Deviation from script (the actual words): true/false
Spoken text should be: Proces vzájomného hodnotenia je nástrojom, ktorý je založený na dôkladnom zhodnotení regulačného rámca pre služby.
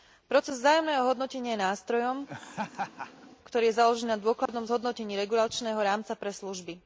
false